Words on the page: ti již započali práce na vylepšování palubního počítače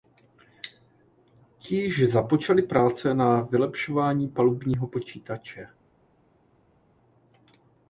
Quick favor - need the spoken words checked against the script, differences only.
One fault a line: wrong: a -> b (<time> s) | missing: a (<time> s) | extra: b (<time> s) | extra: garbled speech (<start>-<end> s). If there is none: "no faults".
no faults